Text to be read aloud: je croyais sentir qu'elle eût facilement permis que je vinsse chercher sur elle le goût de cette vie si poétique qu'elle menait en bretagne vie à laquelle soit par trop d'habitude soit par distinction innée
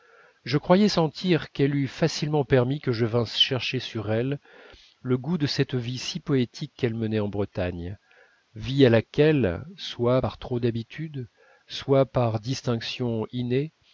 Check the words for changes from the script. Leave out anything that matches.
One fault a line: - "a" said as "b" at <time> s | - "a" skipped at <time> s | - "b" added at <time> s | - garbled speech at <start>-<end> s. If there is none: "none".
none